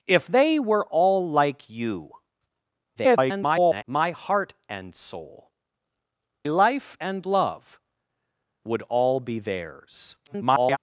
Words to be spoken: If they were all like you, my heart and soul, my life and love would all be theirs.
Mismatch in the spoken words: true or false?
true